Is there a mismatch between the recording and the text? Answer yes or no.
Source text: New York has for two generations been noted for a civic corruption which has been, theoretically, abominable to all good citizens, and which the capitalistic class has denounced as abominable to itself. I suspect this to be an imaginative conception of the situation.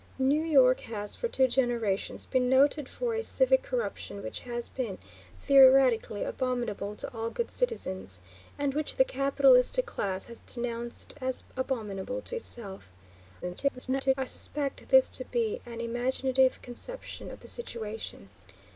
yes